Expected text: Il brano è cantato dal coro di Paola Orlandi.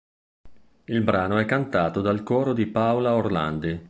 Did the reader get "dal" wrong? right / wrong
right